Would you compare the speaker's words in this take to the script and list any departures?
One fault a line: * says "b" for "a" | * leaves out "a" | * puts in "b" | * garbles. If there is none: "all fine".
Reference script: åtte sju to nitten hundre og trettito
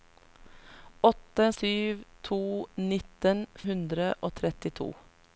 all fine